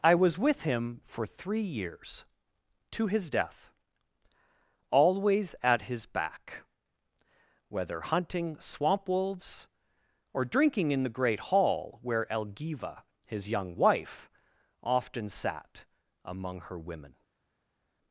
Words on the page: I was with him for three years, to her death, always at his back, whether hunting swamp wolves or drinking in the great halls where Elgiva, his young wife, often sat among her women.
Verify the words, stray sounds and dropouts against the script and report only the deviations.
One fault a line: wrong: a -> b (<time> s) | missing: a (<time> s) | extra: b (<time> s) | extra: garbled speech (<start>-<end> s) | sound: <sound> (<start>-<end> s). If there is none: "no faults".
wrong: her -> his (3.1 s)
wrong: halls -> hall (11.4 s)